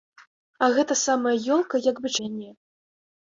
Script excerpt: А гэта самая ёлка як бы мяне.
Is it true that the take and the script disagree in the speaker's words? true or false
false